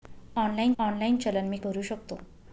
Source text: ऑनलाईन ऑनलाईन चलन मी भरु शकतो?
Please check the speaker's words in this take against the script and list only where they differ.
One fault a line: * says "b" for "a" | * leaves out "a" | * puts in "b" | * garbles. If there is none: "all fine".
all fine